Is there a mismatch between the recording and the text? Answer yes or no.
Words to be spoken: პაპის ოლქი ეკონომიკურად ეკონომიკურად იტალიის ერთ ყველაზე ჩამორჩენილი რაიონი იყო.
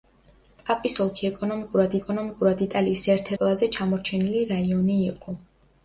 no